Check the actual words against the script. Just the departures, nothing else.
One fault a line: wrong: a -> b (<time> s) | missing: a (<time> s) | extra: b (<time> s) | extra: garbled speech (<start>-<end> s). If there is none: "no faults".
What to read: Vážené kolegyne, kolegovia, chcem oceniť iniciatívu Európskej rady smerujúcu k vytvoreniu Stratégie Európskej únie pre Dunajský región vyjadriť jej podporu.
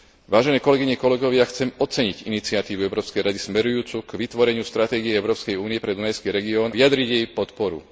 no faults